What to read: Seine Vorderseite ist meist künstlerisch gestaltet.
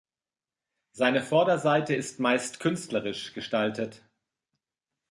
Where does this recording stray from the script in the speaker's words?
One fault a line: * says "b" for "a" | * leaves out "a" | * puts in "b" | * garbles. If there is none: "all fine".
all fine